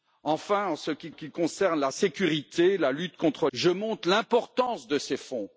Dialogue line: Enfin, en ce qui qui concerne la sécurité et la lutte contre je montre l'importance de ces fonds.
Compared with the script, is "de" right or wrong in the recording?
right